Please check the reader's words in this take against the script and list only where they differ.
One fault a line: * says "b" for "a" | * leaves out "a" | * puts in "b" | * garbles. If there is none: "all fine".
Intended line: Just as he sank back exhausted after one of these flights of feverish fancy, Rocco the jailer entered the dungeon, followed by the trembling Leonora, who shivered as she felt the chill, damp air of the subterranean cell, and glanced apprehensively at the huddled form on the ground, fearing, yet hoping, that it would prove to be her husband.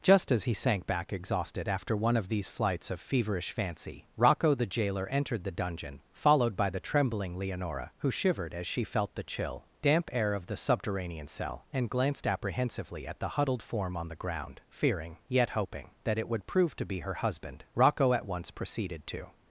* puts in "Rocco at once proceeded to"